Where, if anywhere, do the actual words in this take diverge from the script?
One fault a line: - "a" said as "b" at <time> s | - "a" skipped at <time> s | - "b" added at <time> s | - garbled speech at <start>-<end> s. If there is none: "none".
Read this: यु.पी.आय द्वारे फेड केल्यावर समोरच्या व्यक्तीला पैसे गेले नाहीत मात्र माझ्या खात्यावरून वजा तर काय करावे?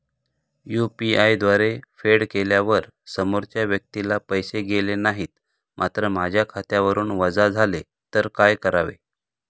- "झाले" added at 7.5 s